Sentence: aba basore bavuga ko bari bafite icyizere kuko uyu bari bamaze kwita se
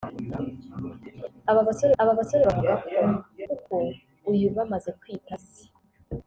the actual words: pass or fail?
fail